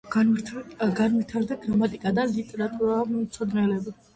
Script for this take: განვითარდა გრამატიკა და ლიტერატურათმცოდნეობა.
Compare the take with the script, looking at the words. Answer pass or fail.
pass